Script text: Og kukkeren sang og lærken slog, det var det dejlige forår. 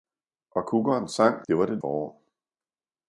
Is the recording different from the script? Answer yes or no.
yes